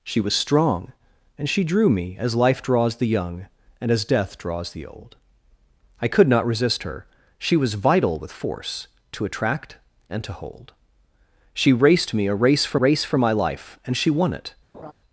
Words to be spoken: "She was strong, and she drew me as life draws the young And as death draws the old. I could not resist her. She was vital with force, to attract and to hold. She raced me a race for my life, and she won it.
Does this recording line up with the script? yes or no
no